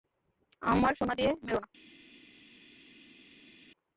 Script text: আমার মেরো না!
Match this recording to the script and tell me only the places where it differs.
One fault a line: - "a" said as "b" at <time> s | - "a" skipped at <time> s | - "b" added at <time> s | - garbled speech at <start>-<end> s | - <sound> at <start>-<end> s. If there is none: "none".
- "সোনা দিয়ে" added at 1.0 s